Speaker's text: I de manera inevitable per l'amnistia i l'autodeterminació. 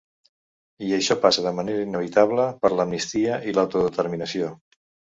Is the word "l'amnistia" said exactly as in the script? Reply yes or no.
yes